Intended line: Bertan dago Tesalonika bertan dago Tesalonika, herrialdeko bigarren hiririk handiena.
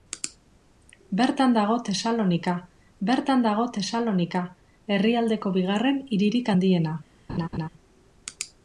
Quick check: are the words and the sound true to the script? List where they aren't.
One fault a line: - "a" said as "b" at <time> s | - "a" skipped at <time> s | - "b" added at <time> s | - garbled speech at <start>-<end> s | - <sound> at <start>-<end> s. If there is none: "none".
- laugh at 7.3-7.7 s